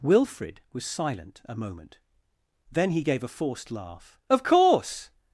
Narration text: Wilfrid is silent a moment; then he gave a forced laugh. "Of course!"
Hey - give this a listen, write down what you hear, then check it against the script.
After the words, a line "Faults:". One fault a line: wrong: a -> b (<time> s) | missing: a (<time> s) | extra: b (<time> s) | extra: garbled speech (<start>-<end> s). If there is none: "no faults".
Wilfrid was silent a moment; then he gave a forced laugh. "Of course!"
Faults:
wrong: is -> was (0.7 s)